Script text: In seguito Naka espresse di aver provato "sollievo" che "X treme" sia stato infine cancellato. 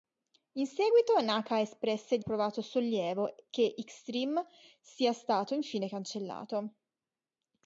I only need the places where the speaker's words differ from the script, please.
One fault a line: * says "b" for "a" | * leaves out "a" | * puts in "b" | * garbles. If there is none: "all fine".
* leaves out "aver"